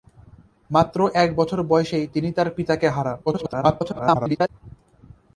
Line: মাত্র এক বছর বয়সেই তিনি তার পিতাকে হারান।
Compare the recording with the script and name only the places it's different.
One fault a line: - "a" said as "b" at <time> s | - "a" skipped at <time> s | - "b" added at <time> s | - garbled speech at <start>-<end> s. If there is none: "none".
- garbled speech at 3.3-4.5 s